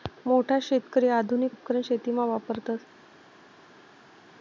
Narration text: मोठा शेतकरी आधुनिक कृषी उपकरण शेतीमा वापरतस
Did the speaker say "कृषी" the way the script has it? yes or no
no